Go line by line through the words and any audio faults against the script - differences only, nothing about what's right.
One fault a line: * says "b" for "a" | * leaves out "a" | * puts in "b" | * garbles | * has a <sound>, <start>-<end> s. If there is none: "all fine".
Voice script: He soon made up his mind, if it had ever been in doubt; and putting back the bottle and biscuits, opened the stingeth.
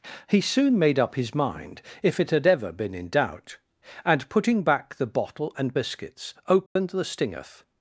* has a dropout, 6.7-6.8 s